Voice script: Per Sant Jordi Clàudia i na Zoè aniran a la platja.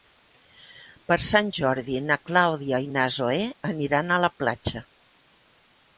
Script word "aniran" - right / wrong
right